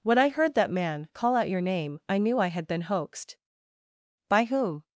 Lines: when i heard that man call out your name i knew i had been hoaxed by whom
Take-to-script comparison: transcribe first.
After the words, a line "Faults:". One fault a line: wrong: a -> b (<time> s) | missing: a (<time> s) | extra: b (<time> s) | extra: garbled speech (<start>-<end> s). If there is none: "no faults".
when i heard that man call out your name i knew i had been hoaxed by whom
Faults:
no faults